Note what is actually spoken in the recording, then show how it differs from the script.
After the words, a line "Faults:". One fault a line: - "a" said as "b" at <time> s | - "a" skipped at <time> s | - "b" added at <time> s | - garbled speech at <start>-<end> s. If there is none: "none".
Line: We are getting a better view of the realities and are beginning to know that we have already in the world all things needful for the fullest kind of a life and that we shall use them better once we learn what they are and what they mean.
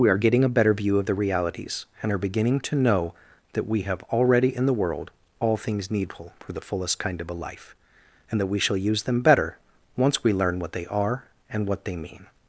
We are getting a better view of the realities and are beginning to know that we have already in the world all things needful for the fullest kind of a life and that we shall use them better once we learn what they are and what they mean.
Faults:
none